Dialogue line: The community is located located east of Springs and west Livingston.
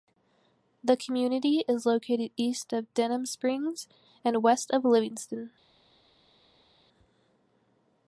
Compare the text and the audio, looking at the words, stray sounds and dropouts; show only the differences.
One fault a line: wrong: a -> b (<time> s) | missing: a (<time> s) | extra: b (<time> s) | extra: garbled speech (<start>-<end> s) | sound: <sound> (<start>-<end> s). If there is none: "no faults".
missing: located (2.3 s)
extra: Denham (3.0 s)
extra: of (4.7 s)